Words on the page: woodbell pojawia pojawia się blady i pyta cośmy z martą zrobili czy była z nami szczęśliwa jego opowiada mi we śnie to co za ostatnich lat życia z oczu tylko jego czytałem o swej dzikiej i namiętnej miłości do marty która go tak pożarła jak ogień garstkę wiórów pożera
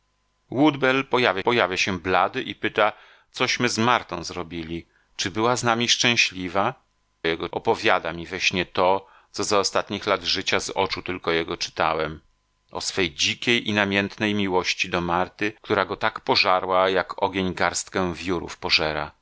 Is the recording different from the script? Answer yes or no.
no